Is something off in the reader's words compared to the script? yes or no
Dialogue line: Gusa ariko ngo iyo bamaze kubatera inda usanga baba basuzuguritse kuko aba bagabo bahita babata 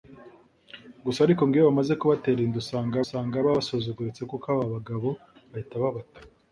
yes